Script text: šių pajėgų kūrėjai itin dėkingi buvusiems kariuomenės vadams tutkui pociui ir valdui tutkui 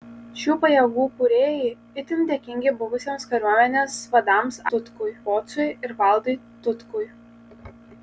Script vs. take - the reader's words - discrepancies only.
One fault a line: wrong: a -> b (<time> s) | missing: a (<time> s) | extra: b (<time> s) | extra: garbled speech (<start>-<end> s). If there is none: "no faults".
no faults